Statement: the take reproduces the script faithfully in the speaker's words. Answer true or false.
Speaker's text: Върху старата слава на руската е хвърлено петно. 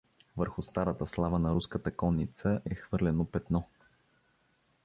false